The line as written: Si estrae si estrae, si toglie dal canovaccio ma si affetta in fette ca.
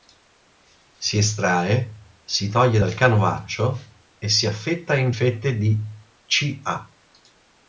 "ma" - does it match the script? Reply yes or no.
no